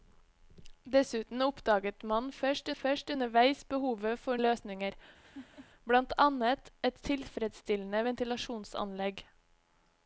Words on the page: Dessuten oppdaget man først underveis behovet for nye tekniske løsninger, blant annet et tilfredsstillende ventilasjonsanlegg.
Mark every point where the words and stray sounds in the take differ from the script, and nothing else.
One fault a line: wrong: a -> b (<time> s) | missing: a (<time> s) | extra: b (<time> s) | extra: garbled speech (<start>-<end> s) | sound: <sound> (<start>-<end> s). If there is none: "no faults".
extra: først (2.8 s)
missing: nye tekniske (4.4 s)
sound: laugh (5.2-5.7 s)